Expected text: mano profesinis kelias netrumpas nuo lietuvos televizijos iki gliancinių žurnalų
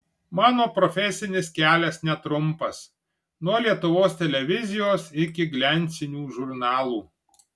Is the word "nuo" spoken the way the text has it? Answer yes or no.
yes